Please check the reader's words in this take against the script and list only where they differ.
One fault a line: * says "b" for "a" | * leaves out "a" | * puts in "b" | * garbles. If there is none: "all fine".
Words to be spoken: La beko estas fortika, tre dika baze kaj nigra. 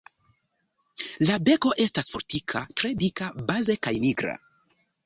all fine